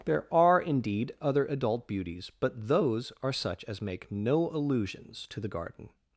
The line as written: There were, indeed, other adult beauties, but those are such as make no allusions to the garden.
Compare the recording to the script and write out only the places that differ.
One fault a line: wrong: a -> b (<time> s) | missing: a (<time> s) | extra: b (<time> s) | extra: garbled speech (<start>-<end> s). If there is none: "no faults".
wrong: were -> are (0.3 s)